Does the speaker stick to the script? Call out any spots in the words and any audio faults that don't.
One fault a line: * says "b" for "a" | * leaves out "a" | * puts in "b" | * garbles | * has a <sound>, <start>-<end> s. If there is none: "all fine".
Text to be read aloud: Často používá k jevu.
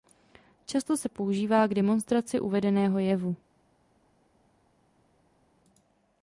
* puts in "se"
* puts in "demonstraci uvedeného"